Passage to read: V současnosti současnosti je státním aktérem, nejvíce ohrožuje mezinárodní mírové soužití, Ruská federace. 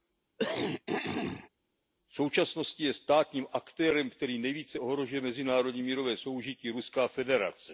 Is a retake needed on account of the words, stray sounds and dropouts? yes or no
yes